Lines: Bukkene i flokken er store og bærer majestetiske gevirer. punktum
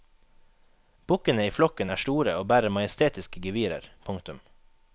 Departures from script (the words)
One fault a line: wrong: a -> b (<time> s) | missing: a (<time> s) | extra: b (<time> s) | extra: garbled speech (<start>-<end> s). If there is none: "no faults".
no faults